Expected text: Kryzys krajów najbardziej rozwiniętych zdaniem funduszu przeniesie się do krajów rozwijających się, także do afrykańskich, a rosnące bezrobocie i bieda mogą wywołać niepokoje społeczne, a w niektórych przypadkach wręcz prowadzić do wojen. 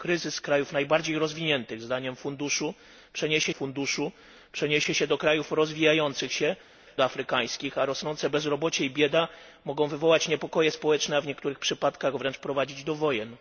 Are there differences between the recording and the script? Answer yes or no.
yes